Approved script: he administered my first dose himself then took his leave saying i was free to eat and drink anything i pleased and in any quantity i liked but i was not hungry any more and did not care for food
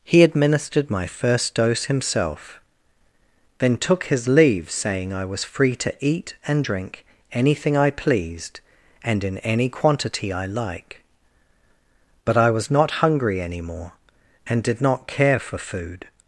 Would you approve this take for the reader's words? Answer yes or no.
no